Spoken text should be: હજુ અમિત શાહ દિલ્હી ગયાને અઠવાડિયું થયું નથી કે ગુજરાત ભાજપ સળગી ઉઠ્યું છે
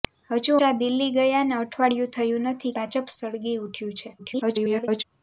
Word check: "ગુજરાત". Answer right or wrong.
wrong